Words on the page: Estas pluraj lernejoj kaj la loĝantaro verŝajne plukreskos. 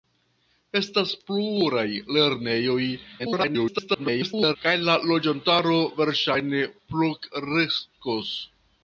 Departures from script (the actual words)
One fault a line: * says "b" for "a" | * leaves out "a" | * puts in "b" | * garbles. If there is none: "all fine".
* garbles